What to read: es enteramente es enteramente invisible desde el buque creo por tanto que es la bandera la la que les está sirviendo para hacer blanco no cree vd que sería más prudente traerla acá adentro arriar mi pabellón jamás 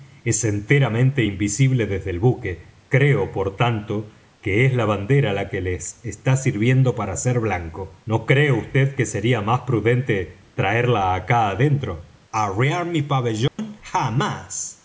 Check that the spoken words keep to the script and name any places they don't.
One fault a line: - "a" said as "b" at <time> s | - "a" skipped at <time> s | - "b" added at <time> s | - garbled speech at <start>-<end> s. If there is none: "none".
- "es enteramente" skipped at 1.2 s
- "la" skipped at 5.5 s